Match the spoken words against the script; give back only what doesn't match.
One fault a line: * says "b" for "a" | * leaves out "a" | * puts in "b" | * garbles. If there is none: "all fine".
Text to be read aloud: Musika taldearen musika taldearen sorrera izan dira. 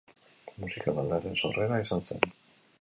* leaves out "musika taldearen"
* says "zen" for "dira"